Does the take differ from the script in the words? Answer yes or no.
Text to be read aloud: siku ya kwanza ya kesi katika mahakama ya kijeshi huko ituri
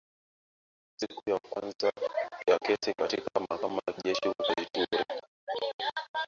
no